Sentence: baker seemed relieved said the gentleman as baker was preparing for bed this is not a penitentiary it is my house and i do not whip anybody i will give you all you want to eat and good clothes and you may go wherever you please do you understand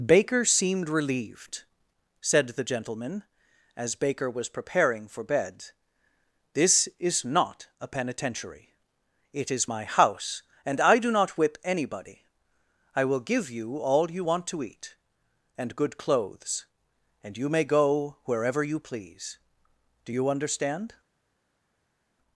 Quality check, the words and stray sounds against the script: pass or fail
pass